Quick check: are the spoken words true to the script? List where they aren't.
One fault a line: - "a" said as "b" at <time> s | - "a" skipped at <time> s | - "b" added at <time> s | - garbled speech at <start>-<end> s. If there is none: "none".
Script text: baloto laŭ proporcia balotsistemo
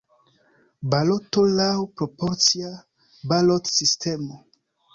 none